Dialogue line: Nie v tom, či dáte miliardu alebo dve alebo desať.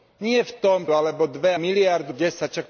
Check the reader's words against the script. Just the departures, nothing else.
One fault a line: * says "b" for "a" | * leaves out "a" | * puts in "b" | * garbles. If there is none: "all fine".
* leaves out "či dáte miliardu"
* says "miliardu" for "alebo"